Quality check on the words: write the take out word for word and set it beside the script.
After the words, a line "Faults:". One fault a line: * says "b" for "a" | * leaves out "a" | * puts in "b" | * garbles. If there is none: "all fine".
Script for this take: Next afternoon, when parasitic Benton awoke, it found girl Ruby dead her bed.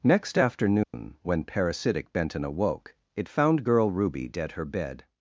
Next afternoon, when parasitic Benton awoke, it found girl Ruby dead her bed.
Faults:
all fine